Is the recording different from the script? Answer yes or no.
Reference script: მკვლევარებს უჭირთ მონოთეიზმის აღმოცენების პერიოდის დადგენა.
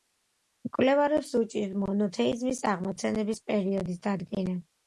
no